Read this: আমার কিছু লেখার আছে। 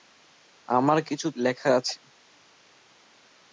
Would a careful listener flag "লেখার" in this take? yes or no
no